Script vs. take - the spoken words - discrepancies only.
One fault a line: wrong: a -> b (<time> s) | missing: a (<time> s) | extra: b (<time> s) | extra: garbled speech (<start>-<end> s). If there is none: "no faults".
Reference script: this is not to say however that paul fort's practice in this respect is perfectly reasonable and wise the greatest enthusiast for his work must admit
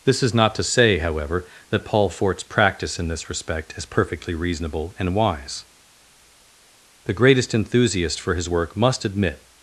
no faults